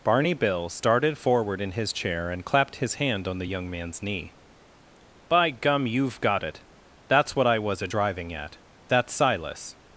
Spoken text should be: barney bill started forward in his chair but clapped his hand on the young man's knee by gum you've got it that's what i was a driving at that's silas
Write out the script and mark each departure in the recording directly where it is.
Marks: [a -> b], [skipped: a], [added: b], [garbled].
barney bill started forward in his chair [but -> and] clapped his hand on the young man's knee by gum you've got it that's what i was a driving at that's silas